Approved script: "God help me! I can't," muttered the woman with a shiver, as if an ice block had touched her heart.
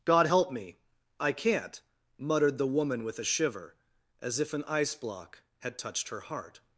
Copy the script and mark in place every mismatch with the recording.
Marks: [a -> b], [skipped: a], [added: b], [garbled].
"God help me! I can't," muttered the woman with a shiver, as if an ice block had touched her heart.